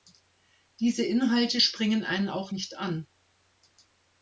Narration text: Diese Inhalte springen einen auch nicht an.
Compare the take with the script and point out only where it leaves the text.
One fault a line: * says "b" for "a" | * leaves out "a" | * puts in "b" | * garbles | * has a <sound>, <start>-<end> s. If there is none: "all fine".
all fine